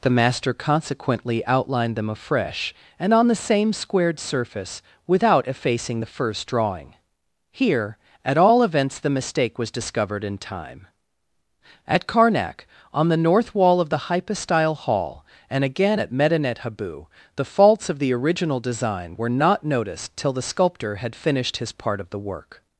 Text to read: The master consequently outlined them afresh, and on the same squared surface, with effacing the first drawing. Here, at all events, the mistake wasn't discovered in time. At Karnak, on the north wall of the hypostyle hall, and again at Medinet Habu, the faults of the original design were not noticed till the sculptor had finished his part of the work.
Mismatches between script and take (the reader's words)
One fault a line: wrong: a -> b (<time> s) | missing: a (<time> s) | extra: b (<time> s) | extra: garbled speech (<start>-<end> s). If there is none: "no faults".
wrong: with -> without (5.0 s)
wrong: wasn't -> was (9.6 s)